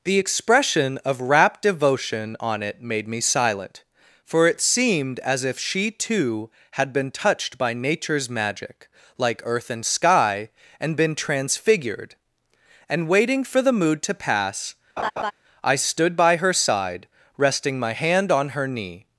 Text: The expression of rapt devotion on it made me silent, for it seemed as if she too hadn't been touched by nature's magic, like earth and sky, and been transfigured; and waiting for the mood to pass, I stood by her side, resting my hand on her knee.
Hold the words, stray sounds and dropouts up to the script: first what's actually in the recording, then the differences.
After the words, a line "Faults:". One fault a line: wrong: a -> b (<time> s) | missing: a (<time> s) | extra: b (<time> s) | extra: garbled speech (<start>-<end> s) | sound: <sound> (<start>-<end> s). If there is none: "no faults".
The expression of rapt devotion on it made me silent, for it seemed as if she too had been touched by nature's magic, like earth and sky, and been transfigured; and waiting for the mood to pass, I stood by her side, resting my hand on her knee.
Faults:
wrong: hadn't -> had (6.7 s)
sound: laugh (15.0-15.3 s)